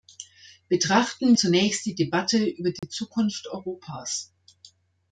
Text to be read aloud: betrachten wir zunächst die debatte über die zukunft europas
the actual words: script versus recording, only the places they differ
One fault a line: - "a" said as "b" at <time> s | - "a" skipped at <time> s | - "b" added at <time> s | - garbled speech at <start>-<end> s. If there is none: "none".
- "wir" skipped at 1.4 s